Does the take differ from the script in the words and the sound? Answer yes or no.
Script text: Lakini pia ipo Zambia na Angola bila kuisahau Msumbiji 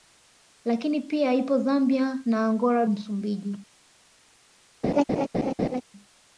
yes